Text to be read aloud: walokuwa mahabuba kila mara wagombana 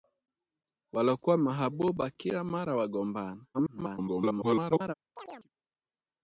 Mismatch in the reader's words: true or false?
true